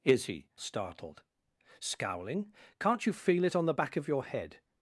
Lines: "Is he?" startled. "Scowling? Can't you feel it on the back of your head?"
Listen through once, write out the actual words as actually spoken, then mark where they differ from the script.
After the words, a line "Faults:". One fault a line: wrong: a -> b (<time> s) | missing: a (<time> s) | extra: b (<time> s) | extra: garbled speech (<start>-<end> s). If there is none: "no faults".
"Is he?" startled. "Scowling? Can't you feel it on the back of your head?"
Faults:
no faults